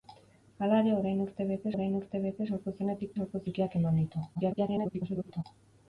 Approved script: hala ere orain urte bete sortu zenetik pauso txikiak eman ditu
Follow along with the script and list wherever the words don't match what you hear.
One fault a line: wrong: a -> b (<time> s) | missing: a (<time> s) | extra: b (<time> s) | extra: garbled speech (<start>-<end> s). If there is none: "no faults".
extra: orain urte bete (1.8 s)
wrong: pauso -> sortu (3.2 s)
extra: garbled speech (4.3-5.4 s)